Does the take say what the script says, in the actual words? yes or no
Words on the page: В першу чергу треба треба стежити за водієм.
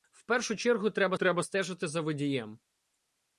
yes